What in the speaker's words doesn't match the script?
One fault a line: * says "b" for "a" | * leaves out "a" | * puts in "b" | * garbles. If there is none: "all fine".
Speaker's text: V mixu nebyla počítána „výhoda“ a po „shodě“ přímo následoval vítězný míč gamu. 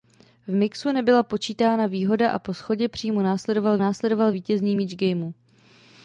* puts in "následoval"